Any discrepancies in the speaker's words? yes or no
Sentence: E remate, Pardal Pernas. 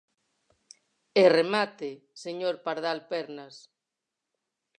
yes